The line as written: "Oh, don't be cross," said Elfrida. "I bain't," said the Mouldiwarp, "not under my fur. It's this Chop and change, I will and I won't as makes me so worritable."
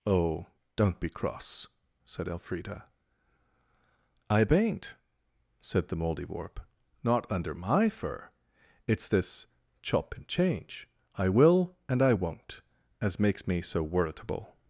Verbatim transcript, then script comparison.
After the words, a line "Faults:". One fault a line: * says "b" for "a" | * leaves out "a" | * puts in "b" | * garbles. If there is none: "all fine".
"Oh, don't be cross," said Elfrida. "I bain't," said the Mouldiwarp, "not under my fur. It's this Chop and change, I will and I won't as makes me so worritable."
Faults:
all fine